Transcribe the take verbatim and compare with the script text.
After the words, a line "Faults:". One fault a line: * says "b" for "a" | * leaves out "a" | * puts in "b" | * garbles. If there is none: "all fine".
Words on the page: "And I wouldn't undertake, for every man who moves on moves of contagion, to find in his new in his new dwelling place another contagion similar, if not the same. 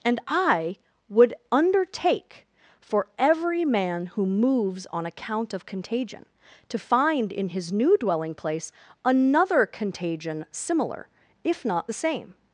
"And I would undertake, for every man who moves on account of contagion, to find in his new dwelling place another contagion similar, if not the same.
Faults:
* says "would" for "wouldn't"
* says "account" for "moves"
* leaves out "in his new"